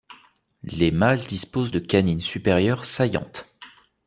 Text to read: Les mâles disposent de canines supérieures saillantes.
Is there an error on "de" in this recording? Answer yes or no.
no